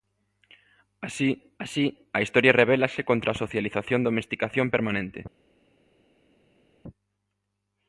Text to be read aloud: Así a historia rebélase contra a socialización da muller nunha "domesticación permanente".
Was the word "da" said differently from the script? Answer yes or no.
yes